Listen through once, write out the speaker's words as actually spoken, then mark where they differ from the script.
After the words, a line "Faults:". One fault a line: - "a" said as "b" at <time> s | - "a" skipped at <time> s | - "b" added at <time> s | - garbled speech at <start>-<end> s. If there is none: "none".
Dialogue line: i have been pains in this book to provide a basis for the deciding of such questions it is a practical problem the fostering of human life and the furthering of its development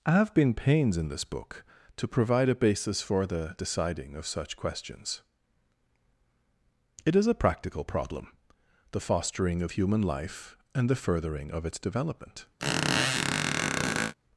i have been pains in this book to provide a basis for the deciding of such questions it is a practical problem the fostering of human life and the furthering of its development
Faults:
none